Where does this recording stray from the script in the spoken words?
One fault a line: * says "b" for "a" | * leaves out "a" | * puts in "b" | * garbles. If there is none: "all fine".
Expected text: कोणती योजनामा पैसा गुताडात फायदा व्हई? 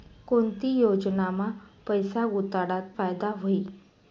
all fine